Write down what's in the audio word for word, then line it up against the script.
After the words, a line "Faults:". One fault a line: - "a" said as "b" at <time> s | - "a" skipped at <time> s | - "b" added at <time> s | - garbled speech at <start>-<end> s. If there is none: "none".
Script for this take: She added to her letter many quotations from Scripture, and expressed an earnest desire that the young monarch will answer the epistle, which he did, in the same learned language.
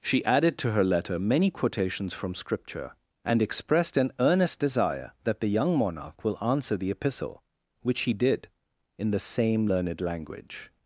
She added to her letter many quotations from Scripture, and expressed an earnest desire that the young monarch will answer the epistle, which he did, in the same learned language.
Faults:
none